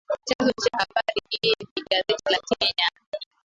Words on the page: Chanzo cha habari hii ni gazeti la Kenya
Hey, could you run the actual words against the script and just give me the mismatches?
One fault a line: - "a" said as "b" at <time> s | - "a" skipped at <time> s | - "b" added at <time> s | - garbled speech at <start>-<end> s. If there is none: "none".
none